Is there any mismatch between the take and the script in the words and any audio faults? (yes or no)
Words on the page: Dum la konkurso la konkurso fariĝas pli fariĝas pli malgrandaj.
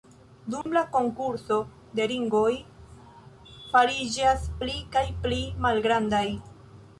yes